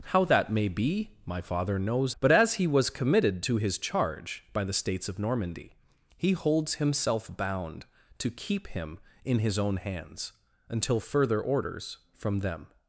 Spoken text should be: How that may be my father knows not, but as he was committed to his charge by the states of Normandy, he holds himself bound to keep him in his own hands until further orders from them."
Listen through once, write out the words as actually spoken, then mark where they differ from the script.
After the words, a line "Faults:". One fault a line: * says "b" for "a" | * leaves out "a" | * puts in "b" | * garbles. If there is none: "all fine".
How that may be my father knows but as he was committed to his charge by the states of Normandy, he holds himself bound to keep him in his own hands until further orders from them."
Faults:
* leaves out "not"